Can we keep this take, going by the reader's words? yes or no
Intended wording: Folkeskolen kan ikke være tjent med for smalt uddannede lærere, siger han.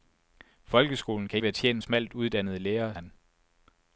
no